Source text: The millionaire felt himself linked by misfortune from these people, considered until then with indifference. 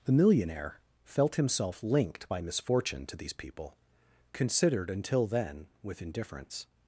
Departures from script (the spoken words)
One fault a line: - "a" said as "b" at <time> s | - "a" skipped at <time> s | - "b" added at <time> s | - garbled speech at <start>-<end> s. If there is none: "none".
- "from" said as "to" at 3.1 s